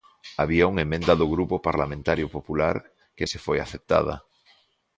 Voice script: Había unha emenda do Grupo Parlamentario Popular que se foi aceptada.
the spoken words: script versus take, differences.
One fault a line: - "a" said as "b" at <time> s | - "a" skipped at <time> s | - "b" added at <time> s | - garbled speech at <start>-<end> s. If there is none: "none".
none